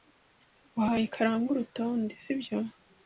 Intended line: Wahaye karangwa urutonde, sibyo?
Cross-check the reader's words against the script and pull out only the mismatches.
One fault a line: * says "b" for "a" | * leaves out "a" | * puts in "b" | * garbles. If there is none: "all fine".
all fine